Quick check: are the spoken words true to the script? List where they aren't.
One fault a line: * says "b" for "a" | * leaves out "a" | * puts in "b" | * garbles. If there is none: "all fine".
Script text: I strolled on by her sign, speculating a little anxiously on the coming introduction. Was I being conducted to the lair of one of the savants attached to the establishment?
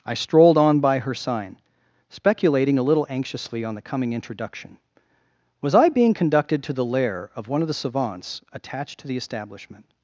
all fine